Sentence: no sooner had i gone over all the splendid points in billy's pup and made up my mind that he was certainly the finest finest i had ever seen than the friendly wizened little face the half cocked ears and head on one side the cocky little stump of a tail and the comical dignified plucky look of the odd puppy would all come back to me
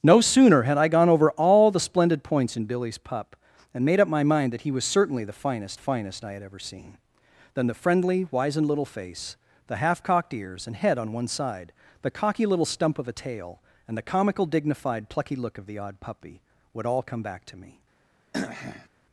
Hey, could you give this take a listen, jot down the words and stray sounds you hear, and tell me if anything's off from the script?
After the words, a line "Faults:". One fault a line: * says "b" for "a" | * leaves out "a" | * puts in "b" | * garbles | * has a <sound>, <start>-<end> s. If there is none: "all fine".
no sooner had i gone over all the splendid points in billy's pup and made up my mind that he was certainly the finest finest i had ever seen than the friendly wizened little face the half cocked ears and head on one side the cocky little stump of a tail and the comical dignified plucky look of the odd puppy would all come back to me
Faults:
* has a throat clearing, 18.3-18.9 s